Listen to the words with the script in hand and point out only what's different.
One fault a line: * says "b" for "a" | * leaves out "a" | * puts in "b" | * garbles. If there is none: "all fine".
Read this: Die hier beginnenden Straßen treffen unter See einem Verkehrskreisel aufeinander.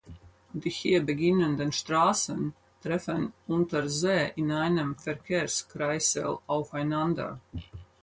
* puts in "in"